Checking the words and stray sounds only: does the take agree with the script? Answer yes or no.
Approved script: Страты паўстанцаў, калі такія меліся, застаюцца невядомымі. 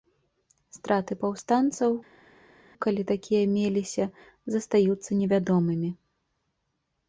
yes